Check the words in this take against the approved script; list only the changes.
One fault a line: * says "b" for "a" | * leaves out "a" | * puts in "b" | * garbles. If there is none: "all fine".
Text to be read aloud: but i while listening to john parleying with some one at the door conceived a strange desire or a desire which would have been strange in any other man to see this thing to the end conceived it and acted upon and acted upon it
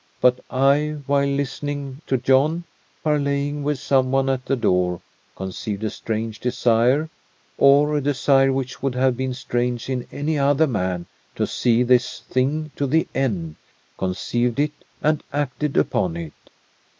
* leaves out "and acted upon"